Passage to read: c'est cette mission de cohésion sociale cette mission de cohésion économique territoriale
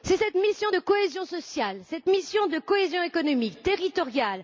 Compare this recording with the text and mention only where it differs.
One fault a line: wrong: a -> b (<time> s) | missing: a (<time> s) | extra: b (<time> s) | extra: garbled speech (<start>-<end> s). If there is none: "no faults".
no faults